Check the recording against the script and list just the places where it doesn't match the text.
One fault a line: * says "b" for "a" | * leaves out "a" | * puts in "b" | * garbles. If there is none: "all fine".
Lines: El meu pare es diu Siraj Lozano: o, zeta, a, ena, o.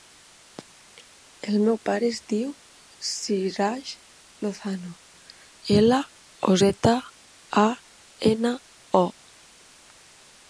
* puts in "ela"